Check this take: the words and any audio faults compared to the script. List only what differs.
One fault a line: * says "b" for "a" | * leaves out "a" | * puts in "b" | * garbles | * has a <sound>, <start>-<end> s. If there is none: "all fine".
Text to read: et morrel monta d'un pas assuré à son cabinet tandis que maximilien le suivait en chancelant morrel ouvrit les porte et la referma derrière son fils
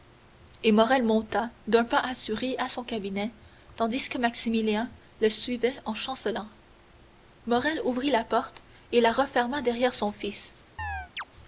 * says "la" for "les"
* has a chirp, 10.8-11.2 s